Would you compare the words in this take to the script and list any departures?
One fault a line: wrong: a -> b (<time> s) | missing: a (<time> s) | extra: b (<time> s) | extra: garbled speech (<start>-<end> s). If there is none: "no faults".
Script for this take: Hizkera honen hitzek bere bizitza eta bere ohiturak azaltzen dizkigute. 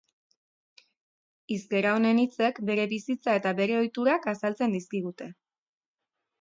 no faults